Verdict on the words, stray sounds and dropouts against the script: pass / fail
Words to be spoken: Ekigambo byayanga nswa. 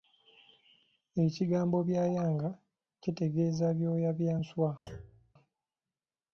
fail